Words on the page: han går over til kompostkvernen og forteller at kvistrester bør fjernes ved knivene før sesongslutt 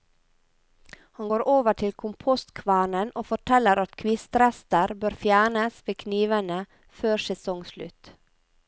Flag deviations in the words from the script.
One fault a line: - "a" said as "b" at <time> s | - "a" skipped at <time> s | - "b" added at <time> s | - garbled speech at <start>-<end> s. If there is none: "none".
none